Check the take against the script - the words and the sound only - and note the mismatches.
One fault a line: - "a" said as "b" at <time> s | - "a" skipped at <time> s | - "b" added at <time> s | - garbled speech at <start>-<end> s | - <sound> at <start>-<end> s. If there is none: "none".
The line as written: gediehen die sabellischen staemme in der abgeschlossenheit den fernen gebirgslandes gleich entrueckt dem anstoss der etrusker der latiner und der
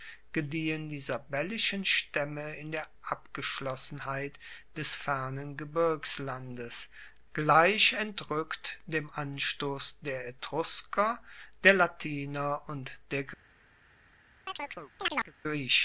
- "den" said as "des" at 4.8 s
- chirp at 14.5-15.3 s